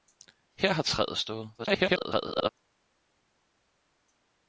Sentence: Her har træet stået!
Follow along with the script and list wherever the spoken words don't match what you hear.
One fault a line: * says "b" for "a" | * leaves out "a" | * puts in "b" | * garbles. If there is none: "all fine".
* garbles